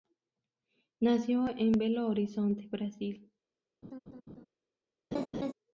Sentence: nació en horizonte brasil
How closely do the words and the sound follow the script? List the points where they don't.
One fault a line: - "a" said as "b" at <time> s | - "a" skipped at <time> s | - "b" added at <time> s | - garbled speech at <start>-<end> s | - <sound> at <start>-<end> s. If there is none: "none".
- "belo" added at 1.7 s
- laugh at 3.8-4.5 s
- laugh at 5.1-5.5 s